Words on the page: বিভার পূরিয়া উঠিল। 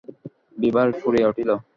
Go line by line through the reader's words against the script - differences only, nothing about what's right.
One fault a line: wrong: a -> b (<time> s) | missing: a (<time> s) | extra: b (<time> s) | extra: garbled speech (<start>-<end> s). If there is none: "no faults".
no faults